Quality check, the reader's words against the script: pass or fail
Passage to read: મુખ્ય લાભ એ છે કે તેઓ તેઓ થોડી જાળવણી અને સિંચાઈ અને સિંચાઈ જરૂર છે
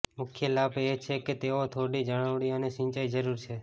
fail